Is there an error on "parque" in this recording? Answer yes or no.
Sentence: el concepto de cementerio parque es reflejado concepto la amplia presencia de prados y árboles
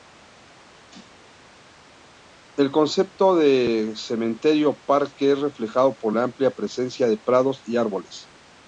no